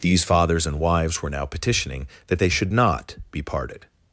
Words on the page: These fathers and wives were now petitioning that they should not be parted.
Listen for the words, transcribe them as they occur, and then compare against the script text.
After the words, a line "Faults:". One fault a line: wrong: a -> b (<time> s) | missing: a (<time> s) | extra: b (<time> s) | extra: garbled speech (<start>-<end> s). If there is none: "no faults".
These fathers and wives were now petitioning that they should not be parted.
Faults:
no faults